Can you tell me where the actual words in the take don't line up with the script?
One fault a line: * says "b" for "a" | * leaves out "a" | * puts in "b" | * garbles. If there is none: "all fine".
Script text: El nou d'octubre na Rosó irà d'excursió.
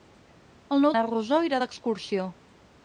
* leaves out "d'octubre"